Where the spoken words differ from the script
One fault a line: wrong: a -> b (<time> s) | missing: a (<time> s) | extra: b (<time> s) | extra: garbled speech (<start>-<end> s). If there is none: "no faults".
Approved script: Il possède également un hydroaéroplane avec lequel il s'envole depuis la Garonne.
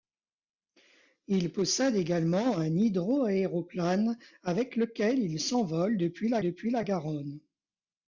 extra: depuis la (6.4 s)